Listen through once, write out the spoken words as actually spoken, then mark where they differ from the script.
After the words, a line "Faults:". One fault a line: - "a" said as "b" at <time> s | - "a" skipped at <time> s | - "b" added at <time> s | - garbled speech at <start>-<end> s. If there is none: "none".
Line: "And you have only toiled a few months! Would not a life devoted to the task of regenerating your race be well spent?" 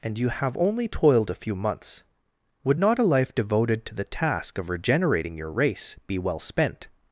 "And you have only toiled a few months! Would not a life devoted to the task of regenerating your race be well spent?"
Faults:
none